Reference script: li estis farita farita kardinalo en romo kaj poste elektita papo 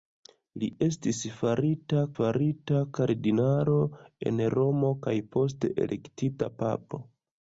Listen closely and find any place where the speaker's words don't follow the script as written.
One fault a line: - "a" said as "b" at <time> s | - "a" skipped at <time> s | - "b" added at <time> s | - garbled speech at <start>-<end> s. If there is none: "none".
none